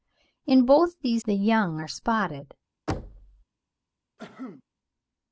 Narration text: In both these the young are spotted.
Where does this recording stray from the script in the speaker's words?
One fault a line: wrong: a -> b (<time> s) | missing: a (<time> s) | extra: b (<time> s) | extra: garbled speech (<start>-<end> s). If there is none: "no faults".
no faults